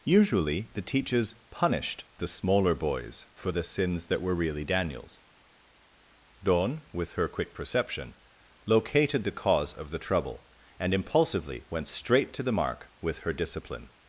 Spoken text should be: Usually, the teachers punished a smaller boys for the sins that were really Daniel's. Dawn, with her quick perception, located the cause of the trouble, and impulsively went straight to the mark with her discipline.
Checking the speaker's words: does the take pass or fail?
fail